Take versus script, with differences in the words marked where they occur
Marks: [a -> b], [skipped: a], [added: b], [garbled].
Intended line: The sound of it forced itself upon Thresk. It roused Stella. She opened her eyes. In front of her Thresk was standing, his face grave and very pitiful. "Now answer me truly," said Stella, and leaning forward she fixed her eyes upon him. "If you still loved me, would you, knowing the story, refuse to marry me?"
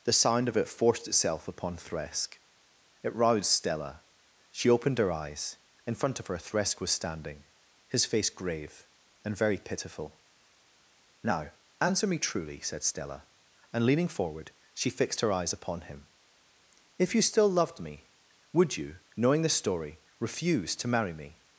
The sound of it forced itself upon Thresk. It roused Stella. She opened her eyes. In front of her Thresk was standing, his face grave and very pitiful. "Now answer me truly," said Stella, and leaning forward she fixed her eyes upon him. "If you still loved me, would you, knowing the story, refuse to marry me?"